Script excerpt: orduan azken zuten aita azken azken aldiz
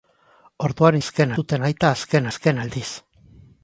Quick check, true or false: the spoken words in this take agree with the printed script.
true